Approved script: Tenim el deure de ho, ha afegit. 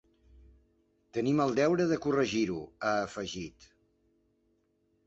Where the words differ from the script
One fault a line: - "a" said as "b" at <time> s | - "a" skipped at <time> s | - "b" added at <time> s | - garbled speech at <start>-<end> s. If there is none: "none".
- "corregir" added at 2.1 s